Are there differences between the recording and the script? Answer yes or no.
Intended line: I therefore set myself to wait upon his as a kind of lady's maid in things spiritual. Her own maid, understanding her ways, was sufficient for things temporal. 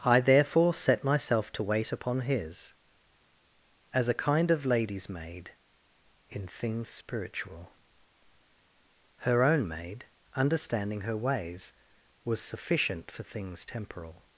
no